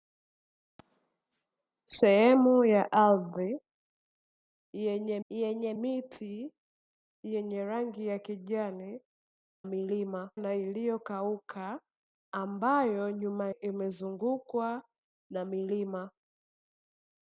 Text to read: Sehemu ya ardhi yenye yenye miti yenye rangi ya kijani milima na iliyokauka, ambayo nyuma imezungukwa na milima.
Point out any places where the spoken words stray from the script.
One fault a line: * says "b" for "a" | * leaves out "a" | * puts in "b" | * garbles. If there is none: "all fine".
all fine